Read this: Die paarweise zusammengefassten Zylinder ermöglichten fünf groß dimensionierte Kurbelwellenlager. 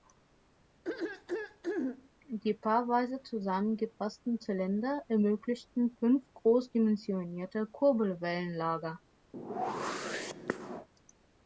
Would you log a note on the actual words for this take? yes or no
no